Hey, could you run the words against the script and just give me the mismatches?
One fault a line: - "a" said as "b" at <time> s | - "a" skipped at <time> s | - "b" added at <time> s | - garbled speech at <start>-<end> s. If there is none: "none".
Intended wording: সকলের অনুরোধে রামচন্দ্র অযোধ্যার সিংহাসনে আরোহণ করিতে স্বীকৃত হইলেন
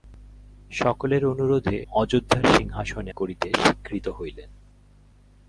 - "রামচন্দ্র" skipped at 1.8 s
- "আরোহণ" skipped at 3.1 s